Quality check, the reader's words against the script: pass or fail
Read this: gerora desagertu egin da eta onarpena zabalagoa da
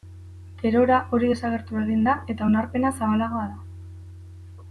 fail